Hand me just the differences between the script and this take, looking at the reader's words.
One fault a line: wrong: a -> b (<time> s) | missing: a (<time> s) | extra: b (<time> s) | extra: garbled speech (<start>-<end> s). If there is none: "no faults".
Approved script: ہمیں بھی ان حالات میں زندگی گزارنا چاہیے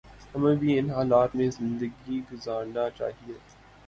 no faults